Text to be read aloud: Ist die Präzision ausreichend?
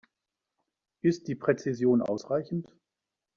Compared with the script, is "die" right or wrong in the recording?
right